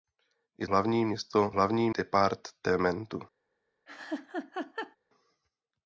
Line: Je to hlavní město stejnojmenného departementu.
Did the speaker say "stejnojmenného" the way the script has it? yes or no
no